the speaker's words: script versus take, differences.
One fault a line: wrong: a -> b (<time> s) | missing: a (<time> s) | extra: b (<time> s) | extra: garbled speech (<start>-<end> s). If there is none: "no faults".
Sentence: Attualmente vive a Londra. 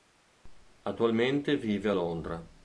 no faults